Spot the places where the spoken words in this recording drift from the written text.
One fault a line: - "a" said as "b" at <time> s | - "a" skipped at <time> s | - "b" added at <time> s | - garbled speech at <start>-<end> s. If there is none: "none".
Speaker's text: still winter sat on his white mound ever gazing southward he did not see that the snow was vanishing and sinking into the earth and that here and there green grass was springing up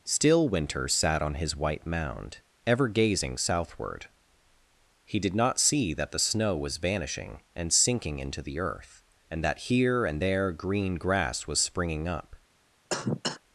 none